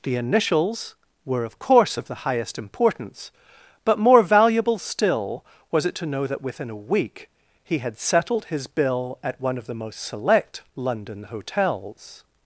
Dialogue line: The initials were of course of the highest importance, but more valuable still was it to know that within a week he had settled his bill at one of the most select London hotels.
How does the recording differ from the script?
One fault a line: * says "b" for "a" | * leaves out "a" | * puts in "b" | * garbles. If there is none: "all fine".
all fine